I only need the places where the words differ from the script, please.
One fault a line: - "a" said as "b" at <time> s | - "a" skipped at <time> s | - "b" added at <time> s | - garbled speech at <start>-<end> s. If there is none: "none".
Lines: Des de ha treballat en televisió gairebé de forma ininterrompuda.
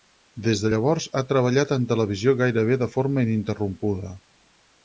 - "llavors" added at 0.7 s